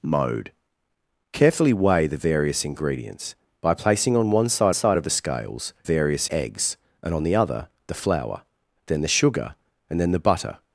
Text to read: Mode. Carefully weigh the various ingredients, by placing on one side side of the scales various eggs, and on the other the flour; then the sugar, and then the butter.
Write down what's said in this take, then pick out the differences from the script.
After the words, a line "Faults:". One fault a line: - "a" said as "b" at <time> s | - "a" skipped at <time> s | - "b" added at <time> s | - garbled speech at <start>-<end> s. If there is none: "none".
Mode. Carefully weigh the various ingredients, by placing on one side side of the scales various eggs, and on the other the flour; then the sugar, and then the butter.
Faults:
none